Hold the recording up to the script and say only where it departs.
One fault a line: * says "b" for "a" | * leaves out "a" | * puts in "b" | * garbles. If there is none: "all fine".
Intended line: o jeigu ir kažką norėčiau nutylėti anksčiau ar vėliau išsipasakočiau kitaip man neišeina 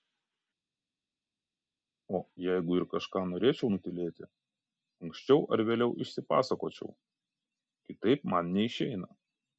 all fine